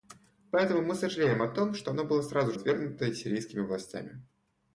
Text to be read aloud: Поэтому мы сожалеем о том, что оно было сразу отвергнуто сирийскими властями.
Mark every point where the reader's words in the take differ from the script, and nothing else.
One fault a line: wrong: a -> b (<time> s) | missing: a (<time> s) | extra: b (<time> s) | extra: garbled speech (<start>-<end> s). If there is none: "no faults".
no faults